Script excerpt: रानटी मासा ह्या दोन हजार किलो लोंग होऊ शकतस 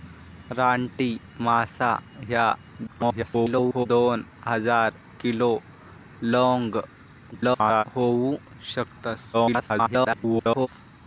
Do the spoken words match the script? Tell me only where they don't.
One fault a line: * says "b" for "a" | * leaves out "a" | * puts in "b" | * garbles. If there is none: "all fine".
* garbles
* garbles
* garbles